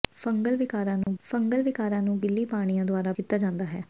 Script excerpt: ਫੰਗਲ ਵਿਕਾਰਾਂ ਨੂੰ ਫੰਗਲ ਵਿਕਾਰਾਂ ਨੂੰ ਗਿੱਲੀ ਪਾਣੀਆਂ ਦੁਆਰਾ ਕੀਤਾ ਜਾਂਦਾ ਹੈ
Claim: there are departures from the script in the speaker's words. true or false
false